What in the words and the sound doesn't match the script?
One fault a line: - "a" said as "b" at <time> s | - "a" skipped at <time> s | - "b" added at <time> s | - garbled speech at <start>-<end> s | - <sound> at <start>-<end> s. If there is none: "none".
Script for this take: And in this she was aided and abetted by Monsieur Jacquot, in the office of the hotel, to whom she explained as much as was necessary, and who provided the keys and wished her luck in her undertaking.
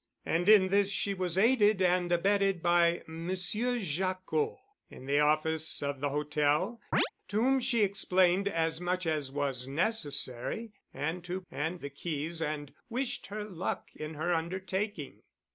- chirp at 6.9-7.1 s
- "provided" said as "and" at 11.5 s